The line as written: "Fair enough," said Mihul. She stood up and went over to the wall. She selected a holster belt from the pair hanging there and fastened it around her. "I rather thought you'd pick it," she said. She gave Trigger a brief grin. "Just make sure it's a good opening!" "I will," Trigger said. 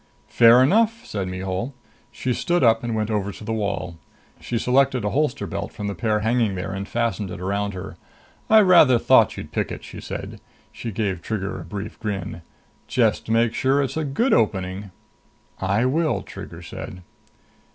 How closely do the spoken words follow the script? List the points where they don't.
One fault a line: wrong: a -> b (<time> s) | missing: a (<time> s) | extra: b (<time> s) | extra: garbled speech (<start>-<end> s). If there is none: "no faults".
no faults